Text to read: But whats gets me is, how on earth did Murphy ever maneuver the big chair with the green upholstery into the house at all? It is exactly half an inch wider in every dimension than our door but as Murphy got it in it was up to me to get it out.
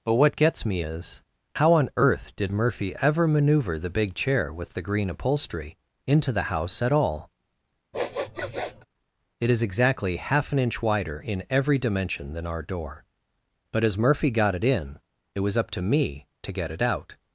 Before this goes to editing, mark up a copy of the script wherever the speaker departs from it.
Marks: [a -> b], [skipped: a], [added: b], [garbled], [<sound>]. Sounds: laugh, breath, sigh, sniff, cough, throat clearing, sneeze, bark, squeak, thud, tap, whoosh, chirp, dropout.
But [whats -> what] gets me is, how on earth did Murphy ever maneuver the big chair with the green upholstery into the house at all? [sniff] It is exactly half an inch wider in every dimension than our door but as Murphy got it in it was up to me to get it out.